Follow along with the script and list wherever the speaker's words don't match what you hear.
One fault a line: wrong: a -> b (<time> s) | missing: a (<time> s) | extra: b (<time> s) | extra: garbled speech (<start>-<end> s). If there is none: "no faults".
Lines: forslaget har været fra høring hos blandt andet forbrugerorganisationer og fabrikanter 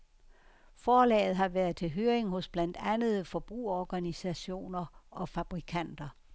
wrong: fra -> til (1.8 s)